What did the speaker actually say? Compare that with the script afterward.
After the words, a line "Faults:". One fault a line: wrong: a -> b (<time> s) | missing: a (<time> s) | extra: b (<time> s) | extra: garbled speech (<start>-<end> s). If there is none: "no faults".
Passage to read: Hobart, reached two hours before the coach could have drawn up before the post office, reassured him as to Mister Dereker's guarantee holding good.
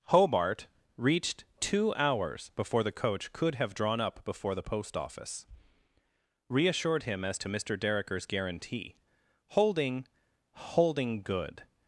Hobart, reached two hours before the coach could have drawn up before the post office, reassured him as to Mister Dereker's guarantee holding holding good.
Faults:
extra: holding (10.5 s)